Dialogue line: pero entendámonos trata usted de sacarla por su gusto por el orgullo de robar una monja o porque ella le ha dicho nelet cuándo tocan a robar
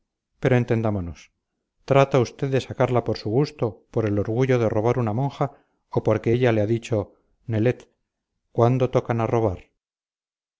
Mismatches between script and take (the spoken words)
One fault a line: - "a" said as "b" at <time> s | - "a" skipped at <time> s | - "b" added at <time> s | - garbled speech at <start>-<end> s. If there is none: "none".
none